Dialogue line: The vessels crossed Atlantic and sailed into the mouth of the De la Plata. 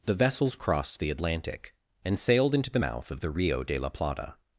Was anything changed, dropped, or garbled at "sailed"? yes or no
no